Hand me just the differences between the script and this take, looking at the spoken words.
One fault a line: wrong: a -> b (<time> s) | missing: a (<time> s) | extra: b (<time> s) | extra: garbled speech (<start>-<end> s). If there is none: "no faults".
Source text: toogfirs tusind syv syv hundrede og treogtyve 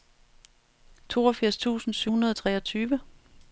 missing: syv (2.1 s)